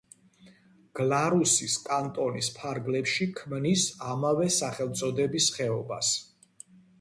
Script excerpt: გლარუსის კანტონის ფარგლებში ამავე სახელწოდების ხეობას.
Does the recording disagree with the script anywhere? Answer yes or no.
yes